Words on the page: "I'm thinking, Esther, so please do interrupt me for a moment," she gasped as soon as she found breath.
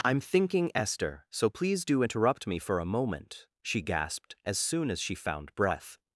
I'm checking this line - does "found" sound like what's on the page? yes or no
yes